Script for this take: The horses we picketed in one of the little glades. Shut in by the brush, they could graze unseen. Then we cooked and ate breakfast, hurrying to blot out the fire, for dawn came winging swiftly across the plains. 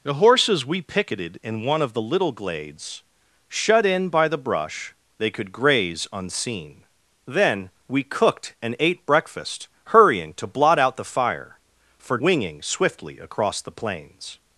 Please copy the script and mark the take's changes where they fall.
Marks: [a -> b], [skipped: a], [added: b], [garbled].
The horses we picketed in one of the little glades. Shut in by the brush, they could graze unseen. Then we cooked and ate breakfast, hurrying to blot out the fire, for [skipped: dawn came] winging swiftly across the plains.